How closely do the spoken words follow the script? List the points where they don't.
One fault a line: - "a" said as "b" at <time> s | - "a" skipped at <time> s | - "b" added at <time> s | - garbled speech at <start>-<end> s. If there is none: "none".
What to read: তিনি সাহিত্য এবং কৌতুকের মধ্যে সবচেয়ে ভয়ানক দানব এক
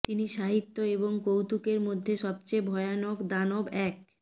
none